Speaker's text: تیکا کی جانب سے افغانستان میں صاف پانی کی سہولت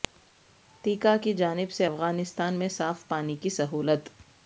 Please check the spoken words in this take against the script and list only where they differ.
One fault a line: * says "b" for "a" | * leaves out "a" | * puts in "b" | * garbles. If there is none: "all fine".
all fine